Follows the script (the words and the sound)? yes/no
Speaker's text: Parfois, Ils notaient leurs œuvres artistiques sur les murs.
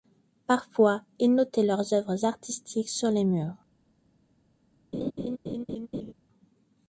no